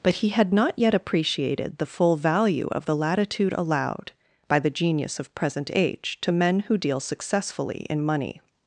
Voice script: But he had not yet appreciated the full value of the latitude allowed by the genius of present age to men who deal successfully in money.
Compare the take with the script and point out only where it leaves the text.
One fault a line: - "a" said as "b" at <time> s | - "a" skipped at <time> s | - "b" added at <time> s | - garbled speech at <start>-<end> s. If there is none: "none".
none